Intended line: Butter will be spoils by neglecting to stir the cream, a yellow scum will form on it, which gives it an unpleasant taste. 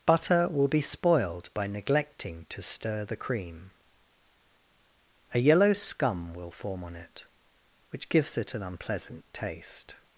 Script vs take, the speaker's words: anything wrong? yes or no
yes